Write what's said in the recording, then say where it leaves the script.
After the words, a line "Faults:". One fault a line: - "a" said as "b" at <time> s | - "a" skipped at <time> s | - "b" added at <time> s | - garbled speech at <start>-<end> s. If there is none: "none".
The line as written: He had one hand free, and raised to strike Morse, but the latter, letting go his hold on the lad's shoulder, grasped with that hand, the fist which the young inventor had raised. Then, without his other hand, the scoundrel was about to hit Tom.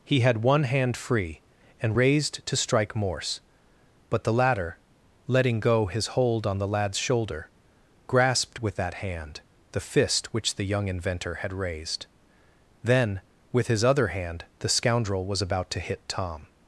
He had one hand free, and raised to strike Morse, but the latter, letting go his hold on the lad's shoulder, grasped with that hand, the fist which the young inventor had raised. Then, with his other hand, the scoundrel was about to hit Tom.
Faults:
- "without" said as "with" at 13.5 s